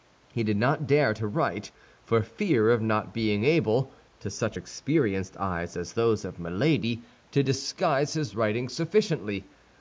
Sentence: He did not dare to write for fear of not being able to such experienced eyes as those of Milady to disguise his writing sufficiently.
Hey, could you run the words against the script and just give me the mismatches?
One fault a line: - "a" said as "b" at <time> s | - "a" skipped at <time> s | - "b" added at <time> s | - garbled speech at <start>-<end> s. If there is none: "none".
none